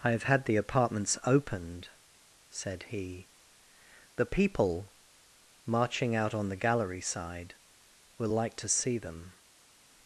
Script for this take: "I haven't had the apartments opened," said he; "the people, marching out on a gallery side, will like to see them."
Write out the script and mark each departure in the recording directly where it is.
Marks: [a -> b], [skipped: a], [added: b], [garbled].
"I [haven't -> have] had the apartments opened," said he; "the people, marching out on [a -> the] gallery side, will like to see them."